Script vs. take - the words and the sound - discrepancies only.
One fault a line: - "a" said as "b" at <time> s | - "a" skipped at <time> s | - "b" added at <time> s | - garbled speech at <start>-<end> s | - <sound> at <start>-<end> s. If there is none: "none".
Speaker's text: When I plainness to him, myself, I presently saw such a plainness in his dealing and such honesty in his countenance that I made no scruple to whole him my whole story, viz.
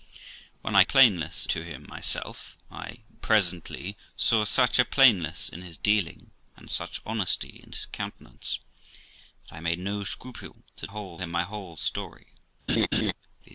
- laugh at 12.7-13.1 s